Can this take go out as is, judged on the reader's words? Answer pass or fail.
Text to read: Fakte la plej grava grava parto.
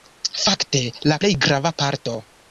fail